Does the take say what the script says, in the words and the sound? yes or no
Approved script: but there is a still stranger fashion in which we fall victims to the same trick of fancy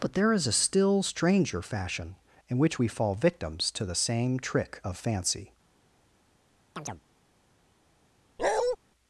no